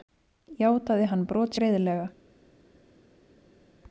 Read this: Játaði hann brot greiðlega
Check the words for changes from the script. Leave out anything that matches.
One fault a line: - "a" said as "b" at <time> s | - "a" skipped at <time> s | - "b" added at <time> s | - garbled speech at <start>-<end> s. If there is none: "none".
none